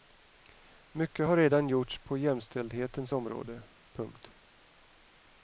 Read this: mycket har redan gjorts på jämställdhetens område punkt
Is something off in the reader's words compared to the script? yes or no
no